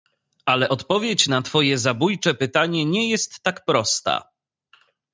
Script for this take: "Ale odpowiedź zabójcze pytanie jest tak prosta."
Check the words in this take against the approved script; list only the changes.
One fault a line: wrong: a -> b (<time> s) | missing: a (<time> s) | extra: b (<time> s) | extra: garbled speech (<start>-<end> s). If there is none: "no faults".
extra: na twoje (1.3 s)
extra: nie (2.9 s)